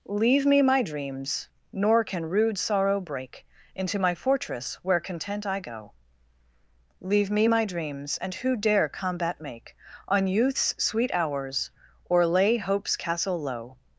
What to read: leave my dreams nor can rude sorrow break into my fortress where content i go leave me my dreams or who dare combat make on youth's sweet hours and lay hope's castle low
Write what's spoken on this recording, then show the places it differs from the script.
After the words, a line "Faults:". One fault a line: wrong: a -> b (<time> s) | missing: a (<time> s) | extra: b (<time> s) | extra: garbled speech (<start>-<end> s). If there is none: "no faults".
leave me my dreams nor can rude sorrow break into my fortress where content i go leave me my dreams and who dare combat make on youth's sweet hours or lay hope's castle low
Faults:
extra: me (0.5 s)
wrong: or -> and (8.2 s)
wrong: and -> or (12.1 s)